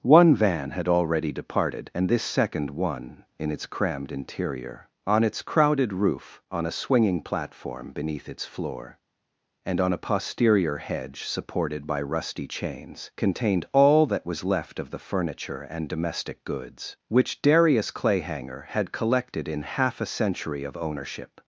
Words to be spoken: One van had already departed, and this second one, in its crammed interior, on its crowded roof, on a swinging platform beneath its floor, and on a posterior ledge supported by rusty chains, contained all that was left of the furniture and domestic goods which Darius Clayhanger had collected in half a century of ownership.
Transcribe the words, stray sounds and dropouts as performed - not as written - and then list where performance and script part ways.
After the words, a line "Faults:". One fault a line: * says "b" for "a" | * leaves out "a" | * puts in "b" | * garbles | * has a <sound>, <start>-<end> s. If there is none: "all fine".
One van had already departed, and this second one, in its crammed interior, on its crowded roof, on a swinging platform beneath its floor, and on a posterior hedge supported by rusty chains, contained all that was left of the furniture and domestic goods which Darius Clayhanger had collected in half a century of ownership.
Faults:
* says "hedge" for "ledge"